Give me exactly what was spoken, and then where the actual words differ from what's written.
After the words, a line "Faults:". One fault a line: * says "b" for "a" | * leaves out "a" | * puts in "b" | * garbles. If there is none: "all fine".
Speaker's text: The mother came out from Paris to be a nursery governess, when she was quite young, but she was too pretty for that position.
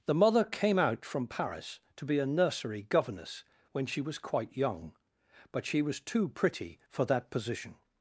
The mother came out from Paris to be a nursery governess, when she was quite young, but she was too pretty for that position.
Faults:
all fine